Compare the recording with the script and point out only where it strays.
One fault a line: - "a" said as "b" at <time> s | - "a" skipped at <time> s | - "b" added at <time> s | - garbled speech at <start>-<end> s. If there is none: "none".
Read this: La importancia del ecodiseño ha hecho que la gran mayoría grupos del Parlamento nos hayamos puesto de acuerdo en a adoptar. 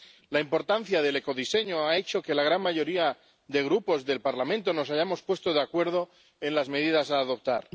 - "de" added at 3.5 s
- "las medidas" added at 6.5 s